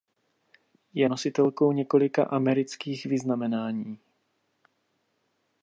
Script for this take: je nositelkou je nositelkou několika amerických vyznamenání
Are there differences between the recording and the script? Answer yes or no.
yes